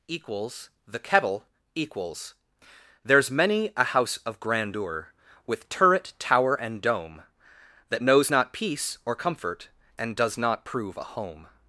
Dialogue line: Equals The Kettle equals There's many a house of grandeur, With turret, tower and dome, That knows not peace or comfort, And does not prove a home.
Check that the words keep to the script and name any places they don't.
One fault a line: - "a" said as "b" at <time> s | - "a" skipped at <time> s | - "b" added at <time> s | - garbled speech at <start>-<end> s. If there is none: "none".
none